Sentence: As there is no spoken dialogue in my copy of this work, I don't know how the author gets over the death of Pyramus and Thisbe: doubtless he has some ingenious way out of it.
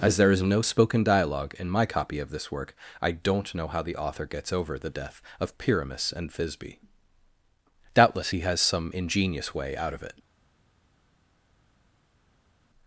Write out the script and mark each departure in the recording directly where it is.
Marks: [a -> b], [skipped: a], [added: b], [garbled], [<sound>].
As there is no spoken dialogue in my copy of this work, I don't know how the author gets over the death of Pyramus and Thisbe: doubtless he has some ingenious way out of it.